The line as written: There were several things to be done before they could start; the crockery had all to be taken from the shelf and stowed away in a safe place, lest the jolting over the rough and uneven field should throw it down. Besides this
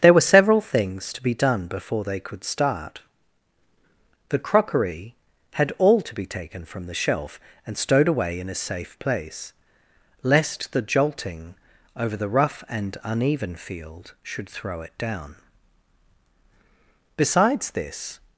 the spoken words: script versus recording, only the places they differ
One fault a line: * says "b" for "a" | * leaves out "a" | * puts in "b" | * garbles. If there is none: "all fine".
all fine